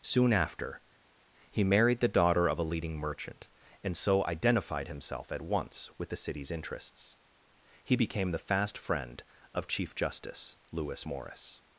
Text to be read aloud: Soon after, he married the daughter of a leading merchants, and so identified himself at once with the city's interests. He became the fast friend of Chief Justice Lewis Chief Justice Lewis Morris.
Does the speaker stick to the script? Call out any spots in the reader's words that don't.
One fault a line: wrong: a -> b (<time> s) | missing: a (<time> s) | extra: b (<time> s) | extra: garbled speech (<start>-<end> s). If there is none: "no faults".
wrong: merchants -> merchant (3.0 s)
missing: Chief Justice Lewis (11.1 s)